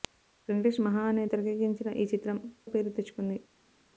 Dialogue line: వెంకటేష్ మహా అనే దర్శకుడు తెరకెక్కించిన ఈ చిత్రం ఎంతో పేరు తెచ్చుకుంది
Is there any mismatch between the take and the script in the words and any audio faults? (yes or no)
yes